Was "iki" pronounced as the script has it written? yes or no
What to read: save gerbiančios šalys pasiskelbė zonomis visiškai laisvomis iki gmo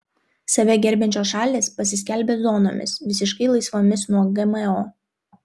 no